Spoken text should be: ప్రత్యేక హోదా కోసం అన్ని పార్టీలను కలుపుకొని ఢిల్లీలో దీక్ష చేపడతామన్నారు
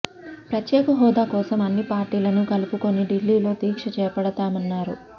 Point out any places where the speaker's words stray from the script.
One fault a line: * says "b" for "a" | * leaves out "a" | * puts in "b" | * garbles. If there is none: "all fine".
all fine